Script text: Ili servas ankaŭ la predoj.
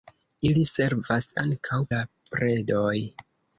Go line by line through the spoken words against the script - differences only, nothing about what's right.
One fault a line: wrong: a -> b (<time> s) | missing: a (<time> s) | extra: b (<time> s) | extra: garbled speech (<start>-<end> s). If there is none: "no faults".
no faults